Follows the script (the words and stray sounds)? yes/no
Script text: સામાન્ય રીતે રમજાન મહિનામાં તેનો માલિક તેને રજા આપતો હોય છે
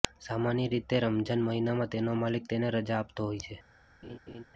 no